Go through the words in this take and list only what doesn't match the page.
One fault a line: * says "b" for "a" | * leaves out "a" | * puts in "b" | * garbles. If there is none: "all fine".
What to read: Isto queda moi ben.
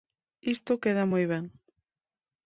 all fine